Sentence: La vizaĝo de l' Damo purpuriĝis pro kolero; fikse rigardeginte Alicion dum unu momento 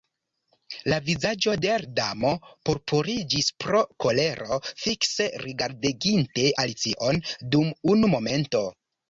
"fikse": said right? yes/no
yes